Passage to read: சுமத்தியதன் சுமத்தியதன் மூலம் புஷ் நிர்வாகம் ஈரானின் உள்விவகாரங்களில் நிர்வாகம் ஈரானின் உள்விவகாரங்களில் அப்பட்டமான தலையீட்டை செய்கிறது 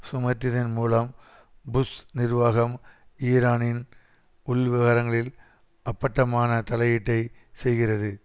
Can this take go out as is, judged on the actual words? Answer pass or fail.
fail